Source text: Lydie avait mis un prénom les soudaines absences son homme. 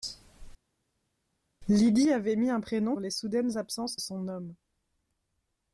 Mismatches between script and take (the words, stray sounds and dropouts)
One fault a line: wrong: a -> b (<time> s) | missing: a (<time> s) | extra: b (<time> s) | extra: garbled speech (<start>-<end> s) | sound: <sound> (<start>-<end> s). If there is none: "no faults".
no faults